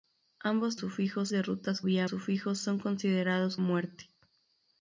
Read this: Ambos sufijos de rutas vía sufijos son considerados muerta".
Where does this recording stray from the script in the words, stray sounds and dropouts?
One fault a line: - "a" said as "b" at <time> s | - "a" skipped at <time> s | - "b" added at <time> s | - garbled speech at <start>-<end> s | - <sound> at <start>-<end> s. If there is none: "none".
none